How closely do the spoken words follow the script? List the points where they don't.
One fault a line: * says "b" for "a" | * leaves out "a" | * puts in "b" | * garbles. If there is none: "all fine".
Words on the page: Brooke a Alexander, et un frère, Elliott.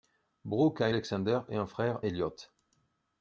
all fine